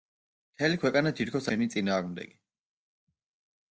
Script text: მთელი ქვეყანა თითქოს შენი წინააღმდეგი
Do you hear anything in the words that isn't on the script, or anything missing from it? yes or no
no